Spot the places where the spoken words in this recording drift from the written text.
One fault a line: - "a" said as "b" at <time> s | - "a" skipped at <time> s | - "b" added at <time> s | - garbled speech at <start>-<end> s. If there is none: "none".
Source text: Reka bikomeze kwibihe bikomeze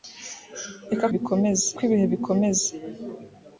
none